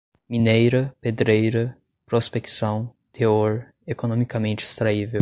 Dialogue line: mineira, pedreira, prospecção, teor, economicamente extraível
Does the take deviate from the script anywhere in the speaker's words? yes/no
no